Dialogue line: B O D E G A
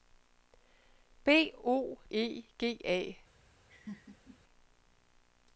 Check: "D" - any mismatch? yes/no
yes